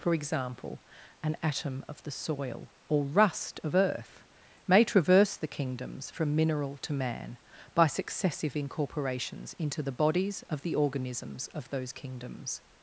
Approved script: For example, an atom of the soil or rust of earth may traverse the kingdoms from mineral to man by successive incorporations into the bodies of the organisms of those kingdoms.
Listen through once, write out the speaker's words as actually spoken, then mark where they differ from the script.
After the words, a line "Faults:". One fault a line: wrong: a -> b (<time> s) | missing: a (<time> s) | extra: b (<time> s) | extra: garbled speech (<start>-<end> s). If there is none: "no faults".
For example, an atom of the soil or rust of earth may traverse the kingdoms from mineral to man by successive incorporations into the bodies of the organisms of those kingdoms.
Faults:
no faults